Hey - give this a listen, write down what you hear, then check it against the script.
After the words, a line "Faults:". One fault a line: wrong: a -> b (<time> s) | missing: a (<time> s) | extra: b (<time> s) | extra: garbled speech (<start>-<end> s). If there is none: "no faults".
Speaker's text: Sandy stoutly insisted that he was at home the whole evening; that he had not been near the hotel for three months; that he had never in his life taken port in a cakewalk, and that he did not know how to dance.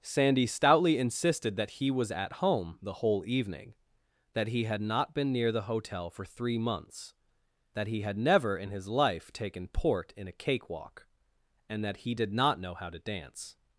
Sandy stoutly insisted that he was at home the whole evening; that he had not been near the hotel for three months; that he had never in his life taken port in a cakewalk, and that he did not know how to dance.
Faults:
no faults